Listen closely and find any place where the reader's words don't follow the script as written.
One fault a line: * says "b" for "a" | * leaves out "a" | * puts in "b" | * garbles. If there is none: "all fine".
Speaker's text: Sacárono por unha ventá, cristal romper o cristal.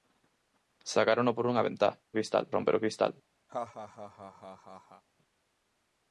all fine